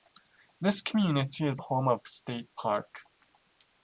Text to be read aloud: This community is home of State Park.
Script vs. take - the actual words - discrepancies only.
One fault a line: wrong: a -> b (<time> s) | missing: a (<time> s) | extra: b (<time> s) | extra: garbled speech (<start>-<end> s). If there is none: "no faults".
no faults